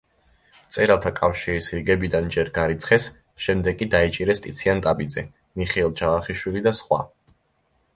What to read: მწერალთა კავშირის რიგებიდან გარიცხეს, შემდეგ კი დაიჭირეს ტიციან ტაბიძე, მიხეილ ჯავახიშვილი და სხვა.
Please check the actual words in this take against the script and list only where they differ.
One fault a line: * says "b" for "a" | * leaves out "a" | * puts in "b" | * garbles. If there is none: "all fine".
* puts in "ჯერ"